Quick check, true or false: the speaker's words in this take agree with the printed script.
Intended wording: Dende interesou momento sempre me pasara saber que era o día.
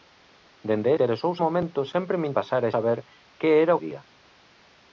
true